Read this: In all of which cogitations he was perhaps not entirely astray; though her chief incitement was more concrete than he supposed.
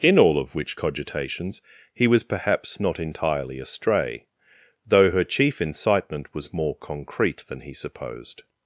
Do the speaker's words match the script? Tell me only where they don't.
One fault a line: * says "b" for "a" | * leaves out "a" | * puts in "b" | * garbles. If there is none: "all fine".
all fine